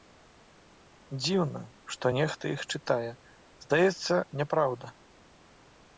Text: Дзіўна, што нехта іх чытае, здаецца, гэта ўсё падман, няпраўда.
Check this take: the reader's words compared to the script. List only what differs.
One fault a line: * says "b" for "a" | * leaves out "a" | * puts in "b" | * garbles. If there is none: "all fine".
* leaves out "гэта ўсё падман"